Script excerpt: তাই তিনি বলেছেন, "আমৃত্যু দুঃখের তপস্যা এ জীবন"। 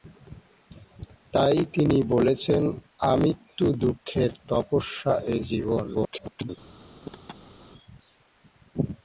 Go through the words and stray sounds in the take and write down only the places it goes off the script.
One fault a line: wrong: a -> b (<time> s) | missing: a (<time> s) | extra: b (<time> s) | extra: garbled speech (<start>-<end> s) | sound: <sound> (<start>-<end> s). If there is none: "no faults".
extra: garbled speech (5.9-6.5 s)
sound: laugh (7.0-7.7 s)